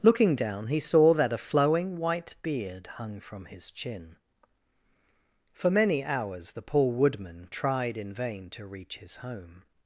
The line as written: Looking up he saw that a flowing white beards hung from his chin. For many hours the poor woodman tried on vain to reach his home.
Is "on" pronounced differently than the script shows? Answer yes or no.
yes